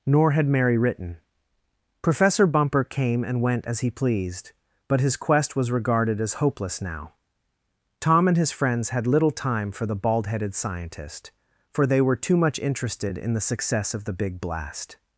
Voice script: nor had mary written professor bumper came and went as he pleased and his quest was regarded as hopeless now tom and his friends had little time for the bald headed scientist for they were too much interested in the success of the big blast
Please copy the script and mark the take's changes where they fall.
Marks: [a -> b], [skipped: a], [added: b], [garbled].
nor had mary written professor bumper came and went as he pleased [and -> but] his quest was regarded as hopeless now tom and his friends had little time for the bald headed scientist for they were too much interested in the success of the big blast